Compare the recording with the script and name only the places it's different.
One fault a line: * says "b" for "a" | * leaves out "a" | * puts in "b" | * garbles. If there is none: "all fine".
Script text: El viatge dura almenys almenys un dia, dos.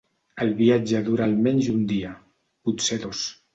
* leaves out "almenys"
* puts in "potser"